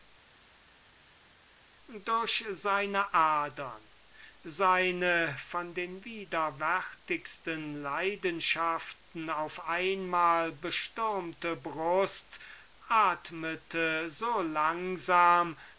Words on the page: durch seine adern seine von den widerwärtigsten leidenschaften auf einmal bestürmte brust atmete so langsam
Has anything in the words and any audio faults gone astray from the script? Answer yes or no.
no